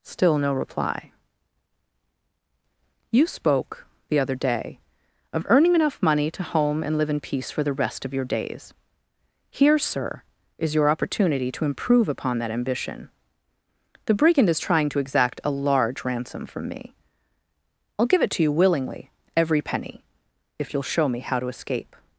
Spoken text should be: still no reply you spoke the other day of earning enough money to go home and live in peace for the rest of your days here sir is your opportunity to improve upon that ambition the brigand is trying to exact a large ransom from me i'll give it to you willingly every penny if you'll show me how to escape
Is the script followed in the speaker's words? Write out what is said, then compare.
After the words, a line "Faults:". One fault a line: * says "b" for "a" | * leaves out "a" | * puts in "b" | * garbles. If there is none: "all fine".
still no reply you spoke the other day of earning enough money to home and live in peace for the rest of your days here sir is your opportunity to improve upon that ambition the brigand is trying to exact a large ransom from me i'll give it to you willingly every penny if you'll show me how to escape
Faults:
* leaves out "go"